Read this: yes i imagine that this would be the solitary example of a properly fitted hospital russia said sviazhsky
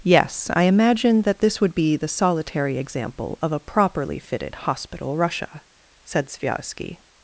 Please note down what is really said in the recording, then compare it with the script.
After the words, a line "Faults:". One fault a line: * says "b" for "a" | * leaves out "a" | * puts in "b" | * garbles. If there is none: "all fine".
yes i imagine that this would be the solitary example of a properly fitted hospital russia said sviazhsky
Faults:
all fine